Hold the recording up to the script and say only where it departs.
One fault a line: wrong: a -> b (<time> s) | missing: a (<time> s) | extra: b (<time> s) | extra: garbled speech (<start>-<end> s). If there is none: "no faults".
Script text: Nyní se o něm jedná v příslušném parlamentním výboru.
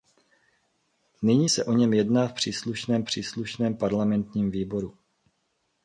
extra: příslušném (3.0 s)